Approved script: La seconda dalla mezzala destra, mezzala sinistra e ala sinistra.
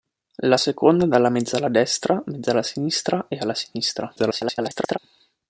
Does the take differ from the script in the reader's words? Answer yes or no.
yes